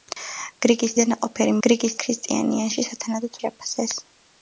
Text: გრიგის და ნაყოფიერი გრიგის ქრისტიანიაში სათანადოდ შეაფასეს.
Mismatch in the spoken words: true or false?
false